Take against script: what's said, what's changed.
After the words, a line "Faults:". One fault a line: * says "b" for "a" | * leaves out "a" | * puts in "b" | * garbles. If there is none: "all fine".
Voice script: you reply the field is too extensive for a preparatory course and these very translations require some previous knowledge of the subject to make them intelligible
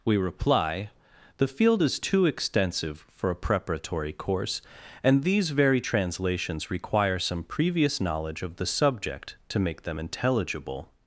we reply the field is too extensive for a preparatory course and these very translations require some previous knowledge of the subject to make them intelligible
Faults:
* says "we" for "you"